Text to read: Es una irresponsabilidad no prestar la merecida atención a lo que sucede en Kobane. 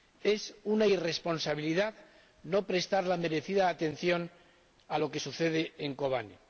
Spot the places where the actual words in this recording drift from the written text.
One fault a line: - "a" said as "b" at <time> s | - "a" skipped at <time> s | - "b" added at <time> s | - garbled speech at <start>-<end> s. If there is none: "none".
none